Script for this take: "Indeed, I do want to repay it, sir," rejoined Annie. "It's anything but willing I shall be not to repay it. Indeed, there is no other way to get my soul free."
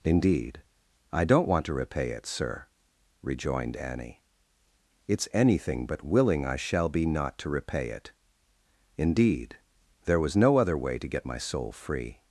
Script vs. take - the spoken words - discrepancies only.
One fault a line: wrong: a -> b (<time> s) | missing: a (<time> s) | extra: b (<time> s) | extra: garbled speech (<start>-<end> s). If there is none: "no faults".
wrong: do -> don't (1.2 s)
wrong: is -> was (10.2 s)